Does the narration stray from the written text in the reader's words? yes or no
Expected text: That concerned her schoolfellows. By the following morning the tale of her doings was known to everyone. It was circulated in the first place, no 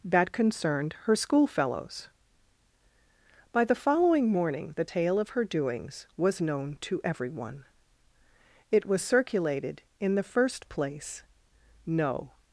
no